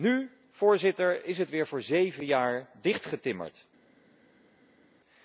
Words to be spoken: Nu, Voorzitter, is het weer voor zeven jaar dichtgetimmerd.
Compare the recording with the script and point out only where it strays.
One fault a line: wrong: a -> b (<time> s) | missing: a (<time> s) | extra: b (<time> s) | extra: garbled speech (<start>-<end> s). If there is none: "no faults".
no faults